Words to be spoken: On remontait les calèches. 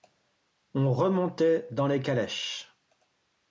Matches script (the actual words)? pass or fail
fail